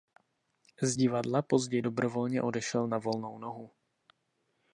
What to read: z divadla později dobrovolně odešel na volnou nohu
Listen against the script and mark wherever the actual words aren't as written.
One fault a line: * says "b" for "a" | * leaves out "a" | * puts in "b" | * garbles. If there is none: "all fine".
all fine